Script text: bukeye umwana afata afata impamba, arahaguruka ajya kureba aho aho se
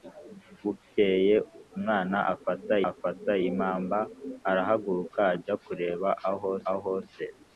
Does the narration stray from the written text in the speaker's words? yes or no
no